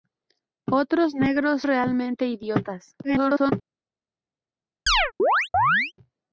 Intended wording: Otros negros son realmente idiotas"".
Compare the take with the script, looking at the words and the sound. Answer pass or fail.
fail